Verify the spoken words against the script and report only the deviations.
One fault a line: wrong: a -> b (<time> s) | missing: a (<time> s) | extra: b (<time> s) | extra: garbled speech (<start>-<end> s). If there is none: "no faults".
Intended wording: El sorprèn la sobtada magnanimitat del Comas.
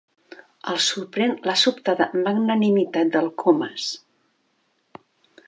no faults